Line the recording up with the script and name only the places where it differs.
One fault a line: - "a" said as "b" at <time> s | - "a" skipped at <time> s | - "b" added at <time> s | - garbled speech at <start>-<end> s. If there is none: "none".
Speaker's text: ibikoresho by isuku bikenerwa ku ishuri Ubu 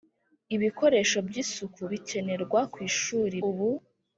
none